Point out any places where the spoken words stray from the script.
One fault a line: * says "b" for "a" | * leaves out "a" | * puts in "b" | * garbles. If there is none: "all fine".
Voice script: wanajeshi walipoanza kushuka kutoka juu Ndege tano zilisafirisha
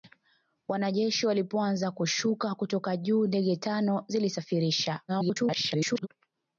* garbles